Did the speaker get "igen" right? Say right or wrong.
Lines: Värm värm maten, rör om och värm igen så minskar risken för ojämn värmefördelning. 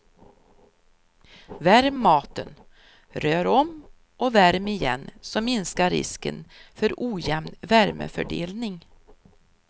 right